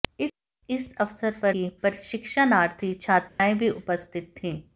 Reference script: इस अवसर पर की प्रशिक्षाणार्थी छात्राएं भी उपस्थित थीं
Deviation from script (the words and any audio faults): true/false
true